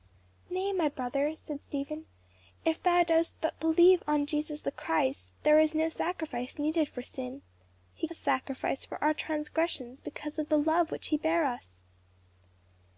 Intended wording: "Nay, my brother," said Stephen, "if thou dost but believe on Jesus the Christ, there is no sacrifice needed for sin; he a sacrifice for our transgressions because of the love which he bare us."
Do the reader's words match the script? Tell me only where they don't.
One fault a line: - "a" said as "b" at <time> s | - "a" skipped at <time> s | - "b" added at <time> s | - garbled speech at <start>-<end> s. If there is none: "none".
none